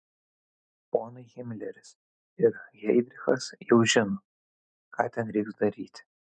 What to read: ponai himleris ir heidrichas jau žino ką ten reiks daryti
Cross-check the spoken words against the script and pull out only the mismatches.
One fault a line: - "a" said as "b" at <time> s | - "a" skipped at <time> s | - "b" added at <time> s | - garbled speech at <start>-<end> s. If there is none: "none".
none